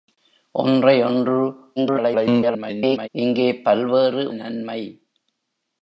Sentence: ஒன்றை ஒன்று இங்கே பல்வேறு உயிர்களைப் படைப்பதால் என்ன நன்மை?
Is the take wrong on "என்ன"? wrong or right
wrong